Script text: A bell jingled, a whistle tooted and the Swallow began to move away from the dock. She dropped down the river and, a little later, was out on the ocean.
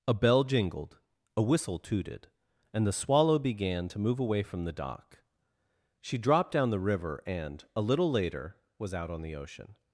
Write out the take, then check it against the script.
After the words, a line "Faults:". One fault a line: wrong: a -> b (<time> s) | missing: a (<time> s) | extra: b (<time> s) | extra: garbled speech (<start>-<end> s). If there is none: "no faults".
A bell jingled, a whistle tooted and the Swallow began to move away from the dock. She dropped down the river and, a little later, was out on the ocean.
Faults:
no faults